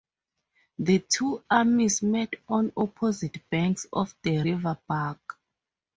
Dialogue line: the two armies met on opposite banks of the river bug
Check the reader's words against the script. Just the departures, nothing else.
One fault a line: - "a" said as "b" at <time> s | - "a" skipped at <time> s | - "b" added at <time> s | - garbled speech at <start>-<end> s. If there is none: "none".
none